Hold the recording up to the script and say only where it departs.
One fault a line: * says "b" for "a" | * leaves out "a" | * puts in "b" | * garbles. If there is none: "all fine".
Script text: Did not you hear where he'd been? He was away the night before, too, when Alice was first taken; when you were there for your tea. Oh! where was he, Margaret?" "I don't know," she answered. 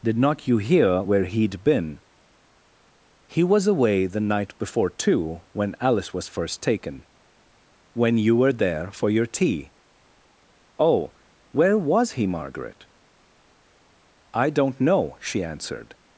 all fine